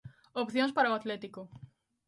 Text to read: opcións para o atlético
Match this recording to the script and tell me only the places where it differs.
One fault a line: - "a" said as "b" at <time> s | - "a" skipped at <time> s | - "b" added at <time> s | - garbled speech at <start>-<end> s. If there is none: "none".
none